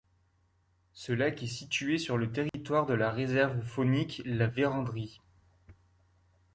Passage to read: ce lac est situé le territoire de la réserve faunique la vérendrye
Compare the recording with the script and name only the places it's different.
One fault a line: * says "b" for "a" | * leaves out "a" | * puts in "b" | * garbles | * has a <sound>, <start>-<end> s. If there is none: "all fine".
* puts in "sur"
* has a dropout, 2.5-2.5 s